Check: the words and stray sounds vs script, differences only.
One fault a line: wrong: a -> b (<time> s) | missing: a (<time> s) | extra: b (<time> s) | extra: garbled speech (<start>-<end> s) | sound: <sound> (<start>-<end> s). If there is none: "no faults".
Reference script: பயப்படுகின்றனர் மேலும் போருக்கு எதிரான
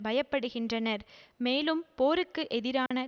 sound: dropout (2.9-2.9 s)